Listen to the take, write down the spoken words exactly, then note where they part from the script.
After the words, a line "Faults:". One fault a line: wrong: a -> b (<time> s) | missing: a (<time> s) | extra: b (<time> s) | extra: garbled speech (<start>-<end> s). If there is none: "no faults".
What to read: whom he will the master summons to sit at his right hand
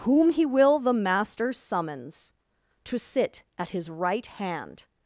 whom he will the master summons to sit at his right hand
Faults:
no faults